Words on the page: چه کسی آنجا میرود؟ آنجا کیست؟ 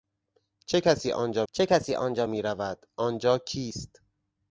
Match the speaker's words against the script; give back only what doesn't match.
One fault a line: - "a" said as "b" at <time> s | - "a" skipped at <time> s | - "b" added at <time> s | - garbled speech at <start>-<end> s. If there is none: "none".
- "چه کسی آنجا" added at 1.5 s